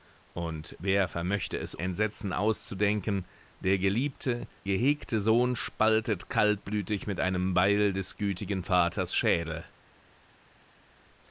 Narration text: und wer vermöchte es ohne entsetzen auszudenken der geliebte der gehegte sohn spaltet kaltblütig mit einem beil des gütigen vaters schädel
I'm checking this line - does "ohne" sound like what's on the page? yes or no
no